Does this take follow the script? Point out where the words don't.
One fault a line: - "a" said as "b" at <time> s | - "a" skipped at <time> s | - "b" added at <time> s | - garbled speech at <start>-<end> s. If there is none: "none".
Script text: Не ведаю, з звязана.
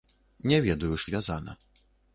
none